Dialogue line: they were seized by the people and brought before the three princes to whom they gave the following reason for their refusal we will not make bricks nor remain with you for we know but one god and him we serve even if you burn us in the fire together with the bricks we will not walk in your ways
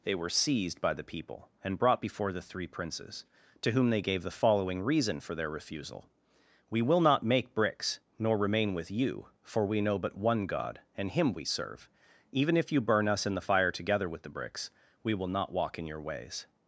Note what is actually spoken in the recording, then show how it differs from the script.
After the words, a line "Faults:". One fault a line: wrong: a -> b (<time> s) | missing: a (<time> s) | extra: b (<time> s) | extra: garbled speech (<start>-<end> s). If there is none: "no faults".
they were seized by the people and brought before the three princes to whom they gave the following reason for their refusal we will not make bricks nor remain with you for we know but one god and him we serve even if you burn us in the fire together with the bricks we will not walk in your ways
Faults:
no faults